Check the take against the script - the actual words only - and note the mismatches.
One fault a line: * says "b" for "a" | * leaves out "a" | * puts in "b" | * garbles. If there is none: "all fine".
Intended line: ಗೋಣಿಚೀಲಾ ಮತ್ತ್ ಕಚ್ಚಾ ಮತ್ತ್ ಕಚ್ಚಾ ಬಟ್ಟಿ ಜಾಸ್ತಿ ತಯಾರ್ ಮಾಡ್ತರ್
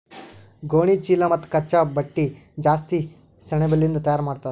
* leaves out "ಮತ್ತ್ ಕಚ್ಚಾ"
* puts in "ಸೆಣಬಲಿಂದ್"